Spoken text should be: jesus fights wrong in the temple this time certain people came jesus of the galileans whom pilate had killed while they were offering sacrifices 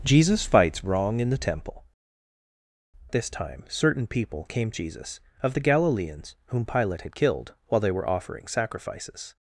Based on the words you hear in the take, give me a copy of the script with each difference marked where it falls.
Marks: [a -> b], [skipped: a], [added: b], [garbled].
jesus fights wrong in the temple this time certain people came jesus of the galileans whom pilate had killed while they were offering sacrifices